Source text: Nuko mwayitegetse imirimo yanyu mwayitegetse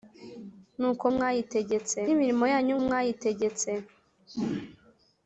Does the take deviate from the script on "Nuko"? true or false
false